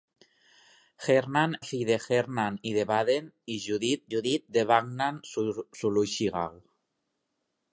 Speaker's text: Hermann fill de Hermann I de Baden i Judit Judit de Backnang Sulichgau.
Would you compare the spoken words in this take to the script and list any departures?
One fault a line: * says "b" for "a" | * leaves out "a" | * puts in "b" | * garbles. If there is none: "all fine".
all fine